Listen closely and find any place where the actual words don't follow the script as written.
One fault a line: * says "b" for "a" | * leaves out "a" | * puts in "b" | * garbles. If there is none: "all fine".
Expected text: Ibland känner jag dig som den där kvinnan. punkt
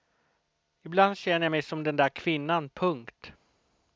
* says "mig" for "dig"